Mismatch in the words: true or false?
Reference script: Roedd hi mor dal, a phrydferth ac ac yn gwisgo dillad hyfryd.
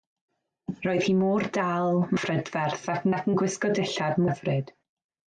false